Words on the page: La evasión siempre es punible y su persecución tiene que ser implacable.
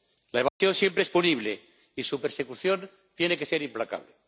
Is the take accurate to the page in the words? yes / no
yes